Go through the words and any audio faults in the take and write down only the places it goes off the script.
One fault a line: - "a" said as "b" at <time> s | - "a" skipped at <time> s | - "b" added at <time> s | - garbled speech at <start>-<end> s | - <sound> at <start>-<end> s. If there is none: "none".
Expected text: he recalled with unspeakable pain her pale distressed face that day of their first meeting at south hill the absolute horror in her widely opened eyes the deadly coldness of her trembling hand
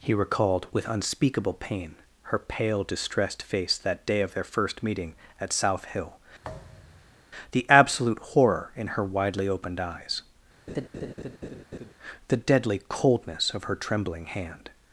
- thud at 6.4-7.3 s
- laugh at 10.7-11.9 s